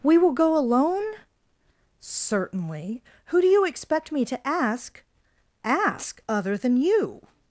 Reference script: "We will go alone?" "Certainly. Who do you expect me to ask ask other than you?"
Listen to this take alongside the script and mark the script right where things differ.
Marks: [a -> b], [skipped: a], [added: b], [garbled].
"We will go alone?" "Certainly. Who do you expect me to ask ask other than you?"